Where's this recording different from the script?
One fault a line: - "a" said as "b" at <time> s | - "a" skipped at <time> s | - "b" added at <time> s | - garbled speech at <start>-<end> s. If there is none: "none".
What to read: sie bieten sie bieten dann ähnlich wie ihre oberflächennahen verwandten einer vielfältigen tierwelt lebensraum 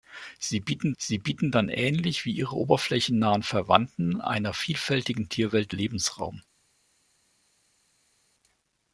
none